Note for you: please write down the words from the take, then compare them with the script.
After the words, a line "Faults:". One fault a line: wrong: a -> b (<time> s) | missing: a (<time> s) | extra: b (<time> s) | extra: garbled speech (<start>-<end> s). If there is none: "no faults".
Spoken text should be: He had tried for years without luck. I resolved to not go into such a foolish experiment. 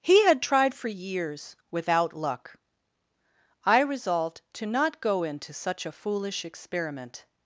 He had tried for years without luck. I resolved to not go into such a foolish experiment.
Faults:
no faults